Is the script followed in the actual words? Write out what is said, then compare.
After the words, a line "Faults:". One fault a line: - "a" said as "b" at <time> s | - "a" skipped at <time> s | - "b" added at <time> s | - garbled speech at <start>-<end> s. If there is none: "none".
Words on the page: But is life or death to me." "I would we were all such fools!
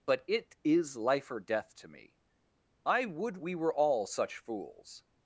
But it is life or death to me." "I would we were all such fools!
Faults:
- "it" added at 0.3 s